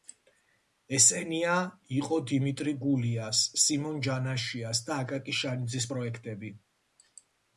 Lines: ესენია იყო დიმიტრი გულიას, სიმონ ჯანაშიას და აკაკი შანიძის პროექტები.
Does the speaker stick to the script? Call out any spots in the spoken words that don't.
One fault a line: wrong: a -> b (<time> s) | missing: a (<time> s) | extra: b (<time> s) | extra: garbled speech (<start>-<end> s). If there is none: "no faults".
no faults